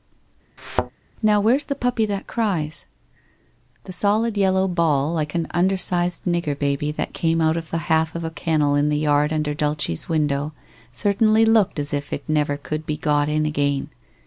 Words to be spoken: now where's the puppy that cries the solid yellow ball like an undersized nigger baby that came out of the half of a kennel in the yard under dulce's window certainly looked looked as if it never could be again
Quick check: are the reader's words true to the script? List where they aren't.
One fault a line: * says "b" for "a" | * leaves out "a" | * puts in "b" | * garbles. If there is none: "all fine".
* leaves out "looked"
* puts in "got in"